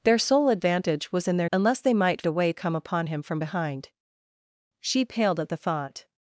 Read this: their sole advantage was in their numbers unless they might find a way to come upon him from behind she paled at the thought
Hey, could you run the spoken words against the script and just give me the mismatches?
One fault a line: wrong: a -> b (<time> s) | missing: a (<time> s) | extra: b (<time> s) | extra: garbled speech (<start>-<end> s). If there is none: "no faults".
missing: numbers (1.5 s)
missing: find (2.2 s)
missing: to (2.5 s)